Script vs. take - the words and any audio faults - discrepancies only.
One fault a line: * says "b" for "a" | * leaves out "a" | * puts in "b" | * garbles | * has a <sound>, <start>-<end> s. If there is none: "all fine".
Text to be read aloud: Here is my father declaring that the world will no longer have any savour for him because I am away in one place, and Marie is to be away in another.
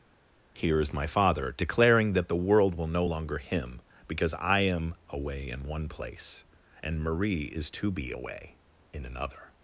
* leaves out "have any savour for"